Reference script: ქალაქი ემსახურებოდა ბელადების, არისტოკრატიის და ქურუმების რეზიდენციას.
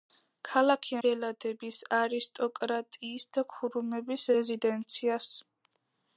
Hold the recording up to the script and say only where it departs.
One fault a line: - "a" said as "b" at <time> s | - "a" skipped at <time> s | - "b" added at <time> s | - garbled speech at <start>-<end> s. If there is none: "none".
- "ემსახურებოდა" skipped at 0.9 s